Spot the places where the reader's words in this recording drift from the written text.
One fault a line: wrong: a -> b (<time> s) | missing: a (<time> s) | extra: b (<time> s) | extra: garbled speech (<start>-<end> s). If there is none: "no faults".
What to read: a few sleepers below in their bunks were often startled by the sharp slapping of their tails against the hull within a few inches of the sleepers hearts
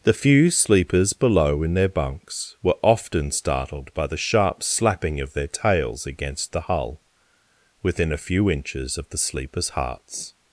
wrong: a -> the (0.0 s)